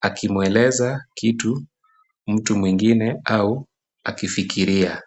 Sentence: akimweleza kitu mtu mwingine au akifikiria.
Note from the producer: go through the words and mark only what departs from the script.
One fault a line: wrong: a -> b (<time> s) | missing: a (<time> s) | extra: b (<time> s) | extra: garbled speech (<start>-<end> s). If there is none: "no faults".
no faults